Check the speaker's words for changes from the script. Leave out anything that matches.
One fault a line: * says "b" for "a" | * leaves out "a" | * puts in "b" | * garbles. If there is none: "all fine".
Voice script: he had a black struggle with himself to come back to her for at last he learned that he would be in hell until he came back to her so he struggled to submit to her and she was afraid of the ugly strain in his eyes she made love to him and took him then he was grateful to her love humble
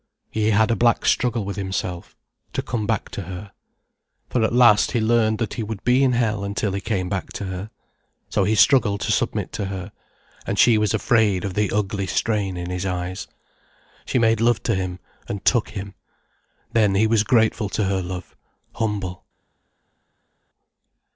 all fine